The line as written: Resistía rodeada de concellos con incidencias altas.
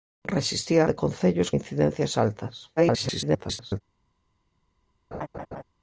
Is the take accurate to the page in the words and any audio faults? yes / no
no